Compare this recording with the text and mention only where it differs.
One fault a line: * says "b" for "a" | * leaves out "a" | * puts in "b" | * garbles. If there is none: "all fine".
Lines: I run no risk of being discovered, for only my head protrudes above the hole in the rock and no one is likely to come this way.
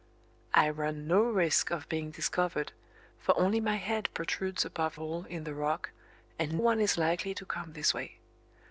* leaves out "the"
* leaves out "no"